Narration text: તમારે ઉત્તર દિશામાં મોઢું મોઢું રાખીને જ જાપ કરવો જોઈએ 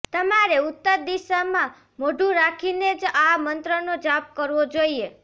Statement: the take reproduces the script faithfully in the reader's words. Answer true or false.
false